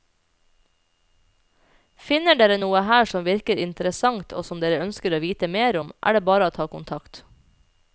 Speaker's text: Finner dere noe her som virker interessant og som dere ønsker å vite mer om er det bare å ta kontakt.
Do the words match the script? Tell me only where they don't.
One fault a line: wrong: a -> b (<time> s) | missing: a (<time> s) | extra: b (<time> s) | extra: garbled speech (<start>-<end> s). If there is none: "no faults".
no faults